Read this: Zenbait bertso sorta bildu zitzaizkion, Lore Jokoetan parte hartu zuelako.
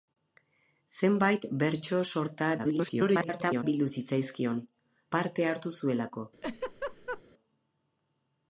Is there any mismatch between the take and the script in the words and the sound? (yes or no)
yes